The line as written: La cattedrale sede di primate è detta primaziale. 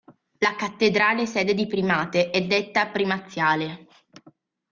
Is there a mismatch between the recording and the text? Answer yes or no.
no